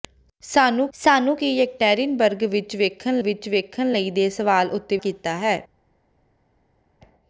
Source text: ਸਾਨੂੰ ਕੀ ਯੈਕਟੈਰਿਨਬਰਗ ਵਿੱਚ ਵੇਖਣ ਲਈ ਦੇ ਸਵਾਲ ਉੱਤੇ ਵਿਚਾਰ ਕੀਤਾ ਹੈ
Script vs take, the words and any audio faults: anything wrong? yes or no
yes